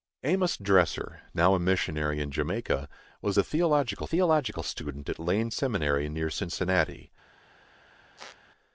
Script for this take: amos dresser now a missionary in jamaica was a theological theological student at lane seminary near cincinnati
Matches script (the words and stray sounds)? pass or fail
fail